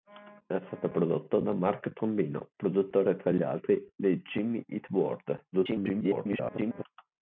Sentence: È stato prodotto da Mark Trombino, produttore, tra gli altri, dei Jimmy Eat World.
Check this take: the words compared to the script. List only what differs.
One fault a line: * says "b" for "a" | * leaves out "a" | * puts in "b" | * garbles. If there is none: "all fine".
* garbles